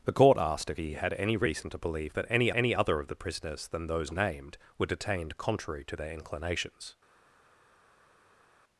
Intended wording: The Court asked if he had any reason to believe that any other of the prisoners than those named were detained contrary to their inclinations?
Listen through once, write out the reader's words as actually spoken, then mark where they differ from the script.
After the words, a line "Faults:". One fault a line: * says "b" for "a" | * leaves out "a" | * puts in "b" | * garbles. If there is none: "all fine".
The Court asked if he had any reason to believe that any any other of the prisoners than those named were detained contrary to their inclinations?
Faults:
* puts in "any"